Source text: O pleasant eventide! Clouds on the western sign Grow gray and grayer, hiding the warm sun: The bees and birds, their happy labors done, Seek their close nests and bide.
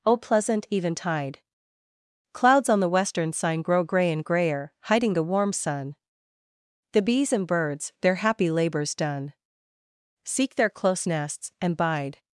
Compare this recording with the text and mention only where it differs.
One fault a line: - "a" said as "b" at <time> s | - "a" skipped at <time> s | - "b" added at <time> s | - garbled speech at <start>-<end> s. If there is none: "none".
none